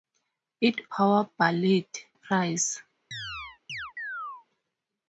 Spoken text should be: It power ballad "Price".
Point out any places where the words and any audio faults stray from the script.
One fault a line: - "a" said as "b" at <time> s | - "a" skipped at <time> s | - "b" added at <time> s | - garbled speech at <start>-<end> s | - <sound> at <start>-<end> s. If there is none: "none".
- chirp at 3.1-4.5 s